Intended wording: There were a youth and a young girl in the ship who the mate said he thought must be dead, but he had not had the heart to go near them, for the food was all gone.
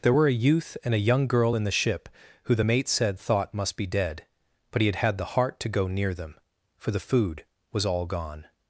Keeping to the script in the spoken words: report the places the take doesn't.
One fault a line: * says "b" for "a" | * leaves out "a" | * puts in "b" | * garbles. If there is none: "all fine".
* leaves out "he"
* leaves out "not"